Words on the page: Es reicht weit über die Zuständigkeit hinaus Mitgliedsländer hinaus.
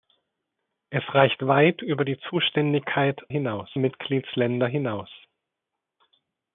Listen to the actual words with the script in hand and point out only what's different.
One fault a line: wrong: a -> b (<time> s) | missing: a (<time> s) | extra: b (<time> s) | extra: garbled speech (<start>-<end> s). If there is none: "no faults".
no faults